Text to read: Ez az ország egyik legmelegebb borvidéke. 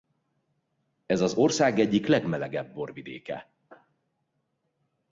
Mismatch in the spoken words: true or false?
false